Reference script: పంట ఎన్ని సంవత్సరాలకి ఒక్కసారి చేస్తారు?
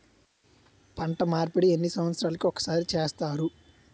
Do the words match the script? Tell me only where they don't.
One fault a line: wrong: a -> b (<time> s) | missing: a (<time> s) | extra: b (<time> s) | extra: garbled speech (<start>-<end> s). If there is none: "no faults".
extra: మార్పిడి (1.2 s)